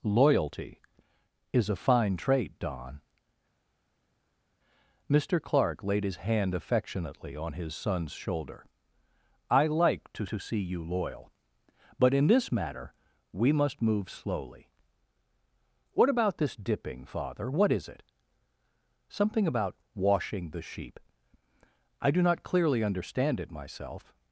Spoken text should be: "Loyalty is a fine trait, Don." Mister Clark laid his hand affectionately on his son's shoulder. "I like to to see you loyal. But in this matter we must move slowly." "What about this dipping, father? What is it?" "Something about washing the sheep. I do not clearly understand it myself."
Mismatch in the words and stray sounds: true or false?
false